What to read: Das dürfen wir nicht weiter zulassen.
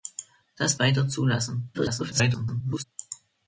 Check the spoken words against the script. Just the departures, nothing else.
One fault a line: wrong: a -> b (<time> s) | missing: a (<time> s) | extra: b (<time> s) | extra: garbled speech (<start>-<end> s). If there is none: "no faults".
missing: dürfen wir nicht (0.8 s)
extra: garbled speech (1.7-2.8 s)